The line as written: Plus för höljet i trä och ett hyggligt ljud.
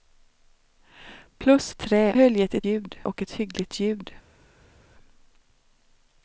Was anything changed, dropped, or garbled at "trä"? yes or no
yes